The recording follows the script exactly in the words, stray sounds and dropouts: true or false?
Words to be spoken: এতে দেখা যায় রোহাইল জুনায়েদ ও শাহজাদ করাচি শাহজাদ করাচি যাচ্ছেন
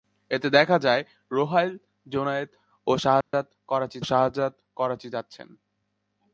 false